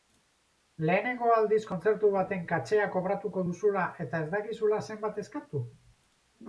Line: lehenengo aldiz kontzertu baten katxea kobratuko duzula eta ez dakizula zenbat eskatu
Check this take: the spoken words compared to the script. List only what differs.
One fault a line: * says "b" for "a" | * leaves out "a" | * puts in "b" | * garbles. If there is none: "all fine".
all fine